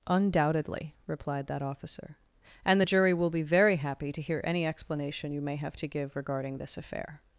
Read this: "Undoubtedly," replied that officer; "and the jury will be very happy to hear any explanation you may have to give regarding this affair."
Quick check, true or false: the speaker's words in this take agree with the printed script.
true